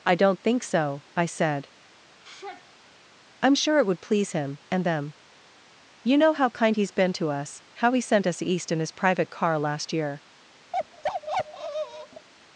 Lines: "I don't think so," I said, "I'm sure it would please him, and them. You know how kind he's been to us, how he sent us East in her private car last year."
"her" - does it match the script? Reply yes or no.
no